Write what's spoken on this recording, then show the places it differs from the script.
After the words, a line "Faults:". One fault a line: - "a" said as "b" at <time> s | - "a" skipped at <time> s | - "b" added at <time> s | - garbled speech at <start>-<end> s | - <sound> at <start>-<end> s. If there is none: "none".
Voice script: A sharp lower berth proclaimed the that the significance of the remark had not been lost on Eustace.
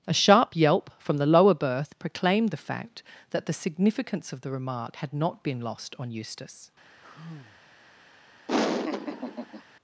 A sharp yelp from the lower berth proclaimed the fact that the significance of the remark had not been lost on Eustace.
Faults:
- "yelp from the" added at 0.6 s
- "fact" added at 2.6 s
- sigh at 7.0-7.6 s
- laugh at 8.5-9.6 s